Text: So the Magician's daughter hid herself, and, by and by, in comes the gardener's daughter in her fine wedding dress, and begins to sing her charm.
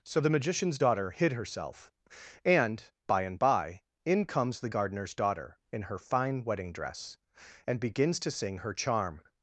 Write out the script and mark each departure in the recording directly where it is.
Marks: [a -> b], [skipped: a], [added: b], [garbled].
So the Magician's daughter hid herself, and, by and by, in comes the gardener's daughter in her fine wedding dress, and begins to sing her charm.